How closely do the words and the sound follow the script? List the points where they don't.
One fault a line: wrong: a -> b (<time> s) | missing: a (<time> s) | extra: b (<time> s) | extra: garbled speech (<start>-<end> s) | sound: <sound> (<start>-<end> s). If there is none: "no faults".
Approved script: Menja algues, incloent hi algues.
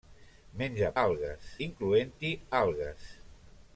no faults